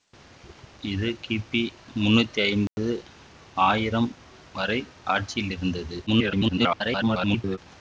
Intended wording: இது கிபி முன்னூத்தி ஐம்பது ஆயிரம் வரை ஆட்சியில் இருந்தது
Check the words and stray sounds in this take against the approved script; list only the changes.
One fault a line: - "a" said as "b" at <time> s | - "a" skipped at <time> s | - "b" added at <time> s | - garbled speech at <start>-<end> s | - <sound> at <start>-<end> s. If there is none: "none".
- dropout at 2.7-2.8 s
- garbled speech at 6.1-7.6 s